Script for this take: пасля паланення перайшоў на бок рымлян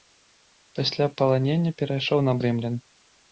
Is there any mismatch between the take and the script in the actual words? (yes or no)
yes